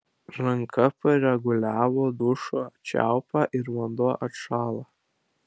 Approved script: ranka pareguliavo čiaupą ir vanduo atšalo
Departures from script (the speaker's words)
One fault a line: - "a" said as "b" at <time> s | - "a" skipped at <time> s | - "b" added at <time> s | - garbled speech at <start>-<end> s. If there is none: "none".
- "dušo" added at 2.2 s